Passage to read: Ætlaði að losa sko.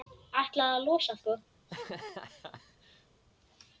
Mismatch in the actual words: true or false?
false